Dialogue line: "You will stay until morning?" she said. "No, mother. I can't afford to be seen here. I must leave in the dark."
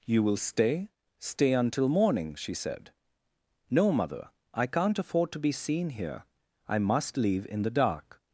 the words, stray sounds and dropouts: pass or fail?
fail